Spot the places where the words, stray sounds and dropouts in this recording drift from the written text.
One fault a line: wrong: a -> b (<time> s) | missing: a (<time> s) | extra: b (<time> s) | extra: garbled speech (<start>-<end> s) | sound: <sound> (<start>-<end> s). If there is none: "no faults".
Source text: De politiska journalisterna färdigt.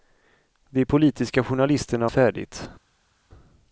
no faults